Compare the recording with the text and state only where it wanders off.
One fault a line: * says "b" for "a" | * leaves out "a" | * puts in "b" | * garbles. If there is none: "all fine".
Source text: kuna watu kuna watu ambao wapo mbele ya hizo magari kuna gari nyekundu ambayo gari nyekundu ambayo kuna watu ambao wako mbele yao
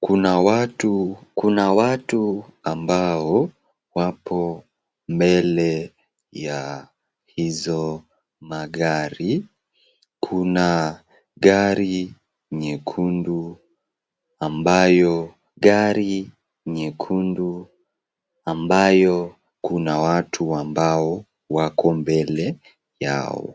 all fine